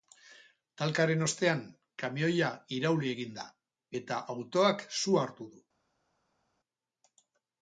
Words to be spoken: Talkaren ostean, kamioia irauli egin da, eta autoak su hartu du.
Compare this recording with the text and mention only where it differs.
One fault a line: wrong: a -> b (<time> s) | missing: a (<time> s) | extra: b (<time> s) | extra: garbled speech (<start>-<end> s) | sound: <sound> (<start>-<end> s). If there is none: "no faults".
no faults